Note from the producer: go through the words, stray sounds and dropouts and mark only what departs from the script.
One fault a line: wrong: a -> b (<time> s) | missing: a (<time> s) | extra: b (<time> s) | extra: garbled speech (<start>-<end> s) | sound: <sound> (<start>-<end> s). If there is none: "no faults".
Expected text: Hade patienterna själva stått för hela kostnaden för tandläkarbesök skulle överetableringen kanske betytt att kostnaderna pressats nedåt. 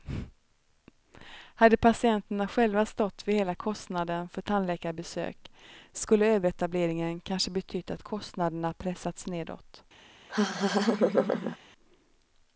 sound: laugh (10.3-11.6 s)